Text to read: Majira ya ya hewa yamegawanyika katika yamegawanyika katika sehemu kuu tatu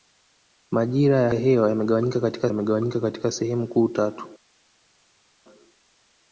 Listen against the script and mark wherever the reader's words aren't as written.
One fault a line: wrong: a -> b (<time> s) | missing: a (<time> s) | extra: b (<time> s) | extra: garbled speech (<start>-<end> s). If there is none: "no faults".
no faults